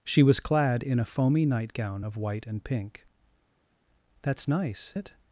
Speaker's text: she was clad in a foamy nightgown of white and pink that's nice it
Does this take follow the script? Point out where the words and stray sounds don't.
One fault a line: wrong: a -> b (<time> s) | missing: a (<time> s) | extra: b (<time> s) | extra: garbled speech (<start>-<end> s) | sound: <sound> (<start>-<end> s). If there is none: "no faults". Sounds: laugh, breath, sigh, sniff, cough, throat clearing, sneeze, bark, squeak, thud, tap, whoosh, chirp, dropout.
no faults